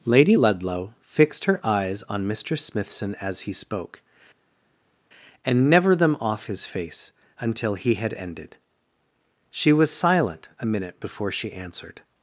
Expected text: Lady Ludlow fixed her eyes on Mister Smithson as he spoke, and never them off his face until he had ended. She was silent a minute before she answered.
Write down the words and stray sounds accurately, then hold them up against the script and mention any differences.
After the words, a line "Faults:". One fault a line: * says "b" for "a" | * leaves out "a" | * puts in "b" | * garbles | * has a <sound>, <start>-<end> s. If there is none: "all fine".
Lady Ludlow fixed her eyes on Mister Smithson as he spoke, and never them off his face until he had ended. She was silent a minute before she answered.
Faults:
all fine